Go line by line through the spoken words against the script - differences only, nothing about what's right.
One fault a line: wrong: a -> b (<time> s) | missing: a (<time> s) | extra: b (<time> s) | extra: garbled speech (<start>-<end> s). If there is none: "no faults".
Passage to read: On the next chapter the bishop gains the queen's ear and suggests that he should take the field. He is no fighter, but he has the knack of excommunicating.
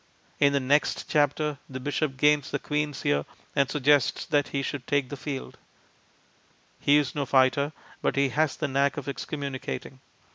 wrong: On -> In (0.4 s)